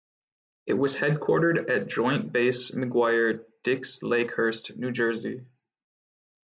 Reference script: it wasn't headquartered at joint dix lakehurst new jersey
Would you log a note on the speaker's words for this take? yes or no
yes